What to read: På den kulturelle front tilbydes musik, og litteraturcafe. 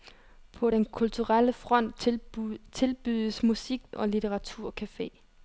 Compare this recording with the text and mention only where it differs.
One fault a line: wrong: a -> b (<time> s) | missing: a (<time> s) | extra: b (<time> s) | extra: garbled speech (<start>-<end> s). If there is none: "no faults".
no faults